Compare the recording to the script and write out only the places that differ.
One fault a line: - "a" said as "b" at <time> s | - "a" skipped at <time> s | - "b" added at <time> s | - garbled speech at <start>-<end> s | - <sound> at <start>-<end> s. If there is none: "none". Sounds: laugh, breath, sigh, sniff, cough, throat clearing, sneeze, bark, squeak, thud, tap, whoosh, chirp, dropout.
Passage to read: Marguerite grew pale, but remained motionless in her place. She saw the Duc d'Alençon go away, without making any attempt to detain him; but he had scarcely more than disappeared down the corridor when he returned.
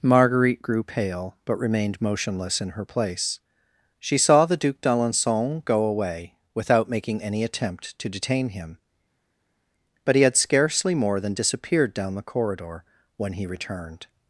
none